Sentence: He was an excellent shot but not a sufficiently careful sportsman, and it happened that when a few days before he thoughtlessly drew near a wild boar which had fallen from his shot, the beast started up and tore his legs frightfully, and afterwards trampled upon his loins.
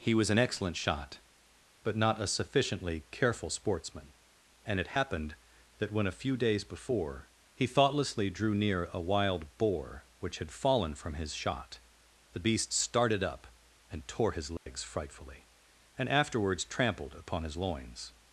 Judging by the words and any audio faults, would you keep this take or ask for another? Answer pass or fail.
fail